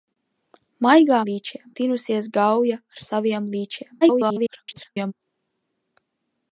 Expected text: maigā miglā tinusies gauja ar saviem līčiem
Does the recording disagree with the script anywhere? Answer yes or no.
yes